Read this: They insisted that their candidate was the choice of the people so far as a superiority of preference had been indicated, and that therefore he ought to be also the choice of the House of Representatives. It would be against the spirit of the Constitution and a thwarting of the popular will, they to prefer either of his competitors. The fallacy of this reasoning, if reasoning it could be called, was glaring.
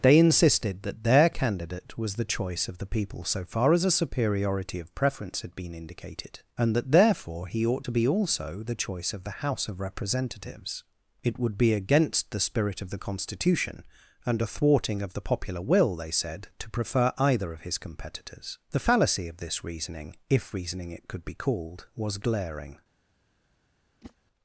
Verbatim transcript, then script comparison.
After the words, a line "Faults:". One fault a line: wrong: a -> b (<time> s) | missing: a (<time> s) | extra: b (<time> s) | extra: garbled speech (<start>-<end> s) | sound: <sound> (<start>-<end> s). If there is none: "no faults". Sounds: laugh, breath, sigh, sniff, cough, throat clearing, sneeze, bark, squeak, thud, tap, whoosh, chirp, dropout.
They insisted that their candidate was the choice of the people so far as a superiority of preference had been indicated, and that therefore he ought to be also the choice of the House of Representatives. It would be against the spirit of the Constitution and a thwarting of the popular will, they said, to prefer either of his competitors. The fallacy of this reasoning, if reasoning it could be called, was glaring.
Faults:
extra: said (16.1 s)
sound: whoosh (24.0-24.1 s)